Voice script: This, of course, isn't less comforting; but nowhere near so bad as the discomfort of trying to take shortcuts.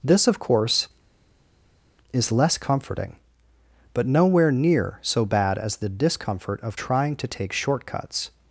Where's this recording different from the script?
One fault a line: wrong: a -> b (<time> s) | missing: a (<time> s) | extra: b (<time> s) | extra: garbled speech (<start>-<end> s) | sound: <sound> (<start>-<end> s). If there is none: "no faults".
wrong: isn't -> is (2.1 s)